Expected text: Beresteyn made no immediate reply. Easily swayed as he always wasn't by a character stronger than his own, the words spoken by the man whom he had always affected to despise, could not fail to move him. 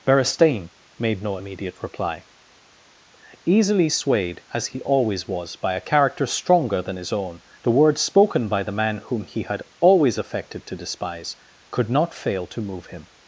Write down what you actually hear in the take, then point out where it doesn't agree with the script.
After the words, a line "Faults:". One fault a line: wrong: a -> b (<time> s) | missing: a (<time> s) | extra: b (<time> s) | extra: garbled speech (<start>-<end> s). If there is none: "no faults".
Beresteyn made no immediate reply. Easily swayed as he always was by a character stronger than his own, the words spoken by the man whom he had always affected to despise, could not fail to move him.
Faults:
wrong: wasn't -> was (5.3 s)